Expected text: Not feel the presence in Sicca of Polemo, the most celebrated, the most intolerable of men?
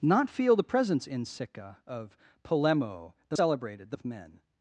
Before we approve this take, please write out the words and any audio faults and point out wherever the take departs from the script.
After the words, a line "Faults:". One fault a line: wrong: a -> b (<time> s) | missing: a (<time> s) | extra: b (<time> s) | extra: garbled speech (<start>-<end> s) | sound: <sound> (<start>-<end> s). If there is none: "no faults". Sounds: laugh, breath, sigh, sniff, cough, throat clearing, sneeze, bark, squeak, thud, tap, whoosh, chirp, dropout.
Not feel the presence in Sicca of Polemo, the celebrated, the of men?
Faults:
missing: most (3.4 s)
missing: most intolerable (4.0 s)